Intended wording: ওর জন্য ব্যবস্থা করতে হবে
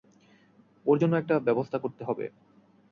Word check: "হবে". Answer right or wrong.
right